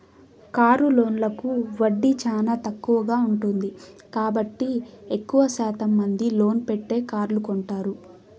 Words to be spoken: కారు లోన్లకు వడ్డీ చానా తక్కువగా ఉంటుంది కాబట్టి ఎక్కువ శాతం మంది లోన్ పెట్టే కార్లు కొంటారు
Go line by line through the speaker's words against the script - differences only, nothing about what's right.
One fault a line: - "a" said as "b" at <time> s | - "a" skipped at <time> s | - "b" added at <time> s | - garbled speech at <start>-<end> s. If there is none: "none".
none